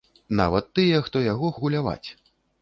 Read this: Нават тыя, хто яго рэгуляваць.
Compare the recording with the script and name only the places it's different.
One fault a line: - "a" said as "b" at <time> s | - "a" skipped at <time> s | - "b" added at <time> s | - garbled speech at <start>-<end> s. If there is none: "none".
none